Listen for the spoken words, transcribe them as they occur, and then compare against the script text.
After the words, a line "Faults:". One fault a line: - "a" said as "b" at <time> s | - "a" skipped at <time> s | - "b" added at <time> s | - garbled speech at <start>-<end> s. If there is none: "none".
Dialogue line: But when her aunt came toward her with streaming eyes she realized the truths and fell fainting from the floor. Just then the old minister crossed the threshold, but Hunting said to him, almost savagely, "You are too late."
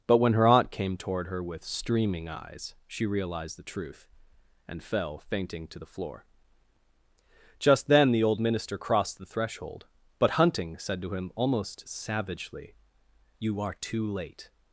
But when her aunt came toward her with streaming eyes she realized the truth and fell fainting to the floor. Just then the old minister crossed the threshold, but Hunting said to him, almost savagely, "You are too late."
Faults:
- "truths" said as "truth" at 3.6 s
- "from" said as "to" at 5.7 s